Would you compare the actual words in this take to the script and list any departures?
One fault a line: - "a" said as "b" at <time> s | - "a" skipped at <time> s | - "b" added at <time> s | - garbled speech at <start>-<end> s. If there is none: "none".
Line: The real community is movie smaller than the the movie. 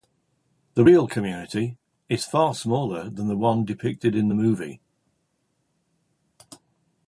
- "movie" said as "far" at 2.2 s
- "one depicted in" added at 3.3 s